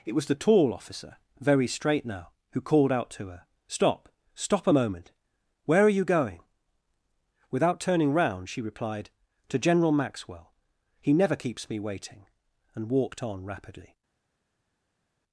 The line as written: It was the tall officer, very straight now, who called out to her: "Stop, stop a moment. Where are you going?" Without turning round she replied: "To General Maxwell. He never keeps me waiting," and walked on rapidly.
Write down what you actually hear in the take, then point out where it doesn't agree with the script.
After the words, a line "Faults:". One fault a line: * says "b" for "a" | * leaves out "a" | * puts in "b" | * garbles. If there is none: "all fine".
It was the tall officer, very straight now, who called out to her: "Stop, stop a moment. Where are you going?" Without turning round she replied: "To General Maxwell. He never keeps me waiting," and walked on rapidly.
Faults:
all fine